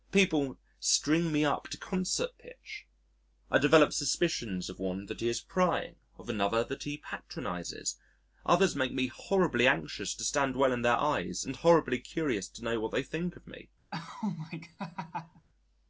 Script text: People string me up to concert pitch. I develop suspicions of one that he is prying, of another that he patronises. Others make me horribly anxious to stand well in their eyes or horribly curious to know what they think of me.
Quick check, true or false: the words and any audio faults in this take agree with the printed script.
false